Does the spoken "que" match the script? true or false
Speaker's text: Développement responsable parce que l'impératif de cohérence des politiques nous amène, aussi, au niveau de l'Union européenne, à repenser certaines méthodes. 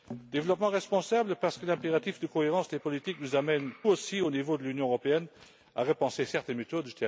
true